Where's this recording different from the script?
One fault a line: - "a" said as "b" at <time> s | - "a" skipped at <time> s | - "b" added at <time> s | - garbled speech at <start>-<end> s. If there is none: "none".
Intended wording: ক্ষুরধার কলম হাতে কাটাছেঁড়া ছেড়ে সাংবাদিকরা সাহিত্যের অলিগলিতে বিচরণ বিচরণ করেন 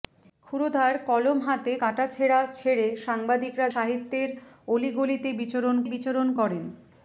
none